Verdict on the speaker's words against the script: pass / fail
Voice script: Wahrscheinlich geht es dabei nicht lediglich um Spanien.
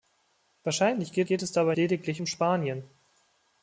fail